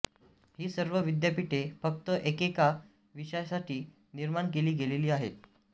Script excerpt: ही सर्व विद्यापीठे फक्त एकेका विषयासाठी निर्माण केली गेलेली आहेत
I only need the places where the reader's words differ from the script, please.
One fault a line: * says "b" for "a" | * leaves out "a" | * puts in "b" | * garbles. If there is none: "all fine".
all fine